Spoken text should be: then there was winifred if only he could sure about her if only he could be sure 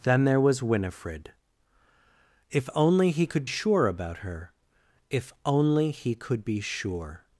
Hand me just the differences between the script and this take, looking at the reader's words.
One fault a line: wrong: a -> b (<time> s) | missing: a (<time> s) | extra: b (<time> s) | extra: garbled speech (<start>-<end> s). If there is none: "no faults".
no faults